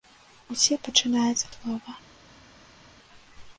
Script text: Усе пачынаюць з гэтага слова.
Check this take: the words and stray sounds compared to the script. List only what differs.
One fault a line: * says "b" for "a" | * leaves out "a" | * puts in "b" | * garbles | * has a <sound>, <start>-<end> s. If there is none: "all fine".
* leaves out "гэтага"